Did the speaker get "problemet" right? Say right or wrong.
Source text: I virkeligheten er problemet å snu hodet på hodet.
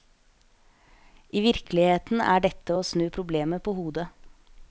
wrong